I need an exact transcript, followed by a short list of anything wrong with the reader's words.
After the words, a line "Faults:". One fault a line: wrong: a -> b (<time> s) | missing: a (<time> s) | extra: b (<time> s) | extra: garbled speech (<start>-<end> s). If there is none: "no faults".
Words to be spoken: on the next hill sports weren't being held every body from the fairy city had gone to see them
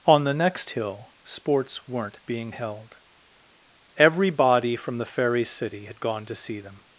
on the next hill sports weren't being held every body from the fairy city had gone to see them
Faults:
no faults